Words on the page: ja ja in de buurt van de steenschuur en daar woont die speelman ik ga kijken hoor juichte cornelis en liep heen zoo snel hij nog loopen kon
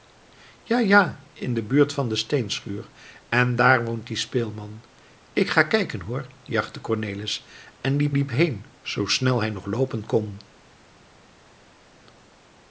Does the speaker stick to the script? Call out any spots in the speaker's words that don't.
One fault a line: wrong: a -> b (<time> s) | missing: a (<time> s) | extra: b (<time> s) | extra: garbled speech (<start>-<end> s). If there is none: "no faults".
extra: liep (8.1 s)